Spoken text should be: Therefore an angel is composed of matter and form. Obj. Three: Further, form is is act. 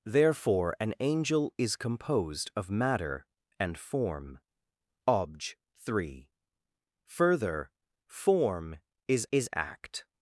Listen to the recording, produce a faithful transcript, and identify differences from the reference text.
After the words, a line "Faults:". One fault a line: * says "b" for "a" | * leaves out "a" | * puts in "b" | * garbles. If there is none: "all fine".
Therefore an angel is composed of matter and form. Obj. Three: Further, form is is act.
Faults:
all fine